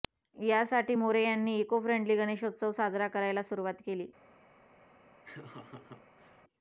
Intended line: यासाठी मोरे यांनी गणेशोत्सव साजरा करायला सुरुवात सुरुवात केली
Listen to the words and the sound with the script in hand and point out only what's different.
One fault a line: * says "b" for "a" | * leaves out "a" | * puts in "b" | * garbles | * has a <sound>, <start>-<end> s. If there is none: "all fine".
* puts in "इको फ्रेंडली"
* leaves out "सुरुवात"
* has a laugh, 5.2-6.4 s